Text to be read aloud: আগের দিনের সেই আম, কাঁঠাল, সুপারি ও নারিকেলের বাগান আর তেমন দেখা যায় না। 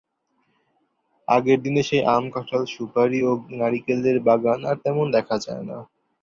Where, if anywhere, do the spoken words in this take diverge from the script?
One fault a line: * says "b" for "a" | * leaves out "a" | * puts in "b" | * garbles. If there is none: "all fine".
all fine